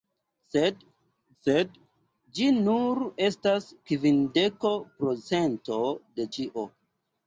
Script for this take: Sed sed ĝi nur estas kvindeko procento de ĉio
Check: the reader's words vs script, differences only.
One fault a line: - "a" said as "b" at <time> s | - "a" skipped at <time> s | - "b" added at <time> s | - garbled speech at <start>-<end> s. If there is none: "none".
none